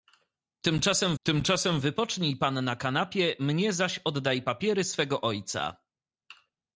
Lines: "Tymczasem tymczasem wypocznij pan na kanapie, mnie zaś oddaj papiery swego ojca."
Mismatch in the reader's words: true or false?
false